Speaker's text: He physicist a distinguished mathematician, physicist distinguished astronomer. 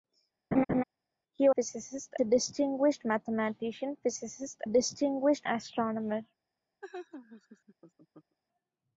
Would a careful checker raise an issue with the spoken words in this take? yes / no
no